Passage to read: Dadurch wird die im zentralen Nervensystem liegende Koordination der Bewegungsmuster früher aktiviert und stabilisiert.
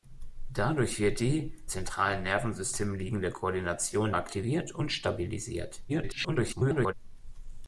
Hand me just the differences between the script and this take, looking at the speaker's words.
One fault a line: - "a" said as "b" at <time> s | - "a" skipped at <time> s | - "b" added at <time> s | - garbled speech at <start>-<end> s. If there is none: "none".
- "im" skipped at 1.5 s
- "der Bewegungsmuster früher" skipped at 4.1 s
- garbled speech at 5.9-6.9 s